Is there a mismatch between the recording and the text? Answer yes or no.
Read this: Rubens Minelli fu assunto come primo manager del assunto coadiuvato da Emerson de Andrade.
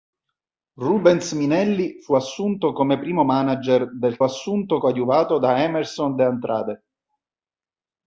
no